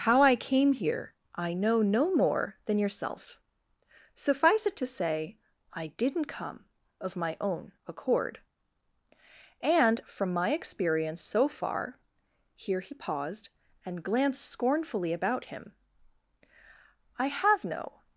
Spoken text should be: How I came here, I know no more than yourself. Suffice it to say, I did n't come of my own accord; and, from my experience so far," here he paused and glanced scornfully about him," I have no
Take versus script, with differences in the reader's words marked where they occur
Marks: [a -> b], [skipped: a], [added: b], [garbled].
How I came here, I know no more than yourself. Suffice it to say, I did n't come of my own accord; and, from my experience so far," here he paused and glanced scornfully about him," I have no